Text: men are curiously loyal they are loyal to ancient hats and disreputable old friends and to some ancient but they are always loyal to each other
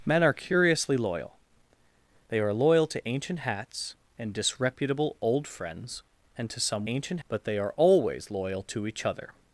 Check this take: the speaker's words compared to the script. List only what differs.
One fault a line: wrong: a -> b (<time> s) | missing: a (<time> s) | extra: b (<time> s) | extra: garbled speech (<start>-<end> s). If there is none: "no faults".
no faults